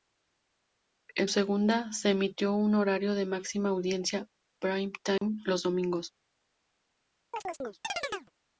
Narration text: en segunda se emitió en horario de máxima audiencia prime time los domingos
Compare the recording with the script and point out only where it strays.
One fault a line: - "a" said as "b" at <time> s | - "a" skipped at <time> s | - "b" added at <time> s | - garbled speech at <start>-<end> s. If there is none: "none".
none